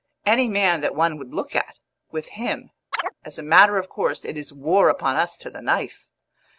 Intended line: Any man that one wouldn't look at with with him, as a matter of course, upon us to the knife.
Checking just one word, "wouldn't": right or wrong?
wrong